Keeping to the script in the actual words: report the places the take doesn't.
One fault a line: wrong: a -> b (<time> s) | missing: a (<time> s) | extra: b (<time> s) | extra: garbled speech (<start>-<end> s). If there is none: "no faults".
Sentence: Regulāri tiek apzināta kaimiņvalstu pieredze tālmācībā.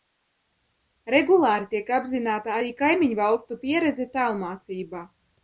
extra: arī (2.6 s)